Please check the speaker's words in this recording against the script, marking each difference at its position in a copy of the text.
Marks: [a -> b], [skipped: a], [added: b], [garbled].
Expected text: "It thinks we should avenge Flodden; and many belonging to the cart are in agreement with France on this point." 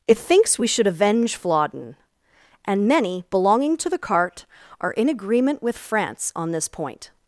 "It thinks we should avenge Flodden; and many belonging to the cart are in agreement with France on this point."